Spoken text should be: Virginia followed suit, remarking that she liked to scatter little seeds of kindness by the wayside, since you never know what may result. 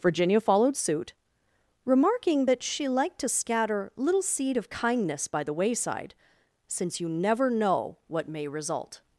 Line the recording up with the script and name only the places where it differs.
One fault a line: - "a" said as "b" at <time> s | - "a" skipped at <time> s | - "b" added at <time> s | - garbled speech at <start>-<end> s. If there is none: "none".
- "seeds" said as "seed" at 4.2 s